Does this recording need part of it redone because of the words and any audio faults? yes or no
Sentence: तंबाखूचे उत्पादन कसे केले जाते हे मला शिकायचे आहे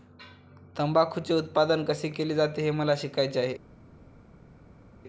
no